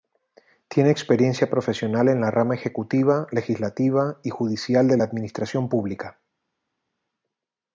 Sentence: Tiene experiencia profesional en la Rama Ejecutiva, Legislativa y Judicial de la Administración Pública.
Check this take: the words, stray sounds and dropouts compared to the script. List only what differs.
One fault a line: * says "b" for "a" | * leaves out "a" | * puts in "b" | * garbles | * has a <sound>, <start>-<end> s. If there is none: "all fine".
all fine